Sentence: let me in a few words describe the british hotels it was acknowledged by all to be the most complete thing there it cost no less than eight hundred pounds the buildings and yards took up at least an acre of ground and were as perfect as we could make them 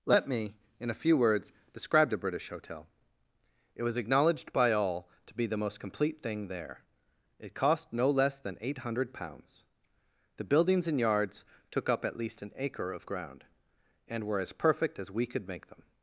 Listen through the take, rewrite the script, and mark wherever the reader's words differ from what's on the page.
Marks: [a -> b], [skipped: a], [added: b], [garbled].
let me in a few words describe the british [hotels -> hotel] it was acknowledged by all to be the most complete thing there it cost no less than eight hundred pounds the buildings and yards took up at least an acre of ground and were as perfect as we could make them